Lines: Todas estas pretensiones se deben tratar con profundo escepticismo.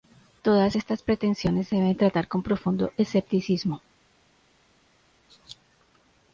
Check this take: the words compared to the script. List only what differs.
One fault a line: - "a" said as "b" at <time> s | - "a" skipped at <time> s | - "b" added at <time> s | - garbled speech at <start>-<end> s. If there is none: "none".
none